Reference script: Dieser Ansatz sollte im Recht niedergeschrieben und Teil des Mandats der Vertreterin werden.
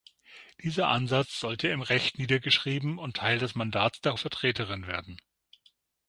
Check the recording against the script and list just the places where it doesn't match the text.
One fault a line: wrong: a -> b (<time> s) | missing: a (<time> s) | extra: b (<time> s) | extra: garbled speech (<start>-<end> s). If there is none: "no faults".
no faults